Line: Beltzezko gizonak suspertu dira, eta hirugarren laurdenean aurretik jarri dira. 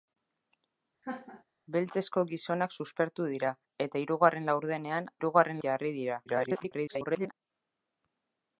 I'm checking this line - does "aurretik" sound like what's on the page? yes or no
no